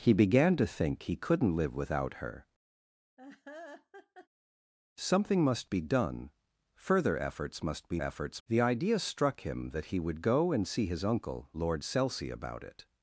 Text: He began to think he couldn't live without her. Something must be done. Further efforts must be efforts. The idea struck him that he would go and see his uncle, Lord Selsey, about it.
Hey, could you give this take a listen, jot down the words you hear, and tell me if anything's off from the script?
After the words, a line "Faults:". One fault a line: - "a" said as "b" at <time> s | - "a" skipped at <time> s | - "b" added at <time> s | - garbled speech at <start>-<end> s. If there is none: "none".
He began to think he couldn't live without her. Something must be done. Further efforts must be efforts. The idea struck him that he would go and see his uncle, Lord Selsey, about it.
Faults:
none